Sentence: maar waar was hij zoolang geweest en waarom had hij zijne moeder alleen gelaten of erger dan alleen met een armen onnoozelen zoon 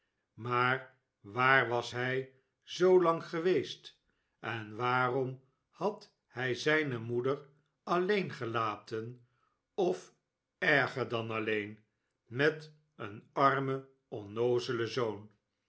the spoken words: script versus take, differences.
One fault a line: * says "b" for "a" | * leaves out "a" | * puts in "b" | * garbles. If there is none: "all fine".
all fine